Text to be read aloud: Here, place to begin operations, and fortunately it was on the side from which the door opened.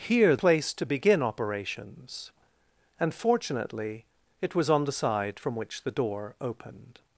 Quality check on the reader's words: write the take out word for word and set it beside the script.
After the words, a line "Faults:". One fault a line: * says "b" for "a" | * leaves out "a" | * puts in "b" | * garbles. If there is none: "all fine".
Here, place to begin operations, and fortunately it was on the side from which the door opened.
Faults:
all fine